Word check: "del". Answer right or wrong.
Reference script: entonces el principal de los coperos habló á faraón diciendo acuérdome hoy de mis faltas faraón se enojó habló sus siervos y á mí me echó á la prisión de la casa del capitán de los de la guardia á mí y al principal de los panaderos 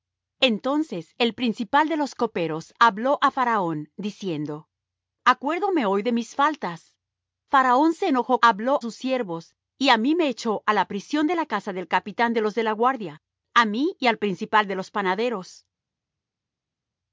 right